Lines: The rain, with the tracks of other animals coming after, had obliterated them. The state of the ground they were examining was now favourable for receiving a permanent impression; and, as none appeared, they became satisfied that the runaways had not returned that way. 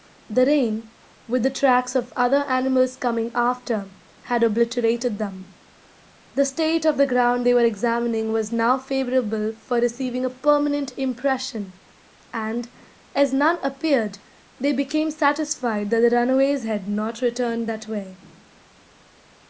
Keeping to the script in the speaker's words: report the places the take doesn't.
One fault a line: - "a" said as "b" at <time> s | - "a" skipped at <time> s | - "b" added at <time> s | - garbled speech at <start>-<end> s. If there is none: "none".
none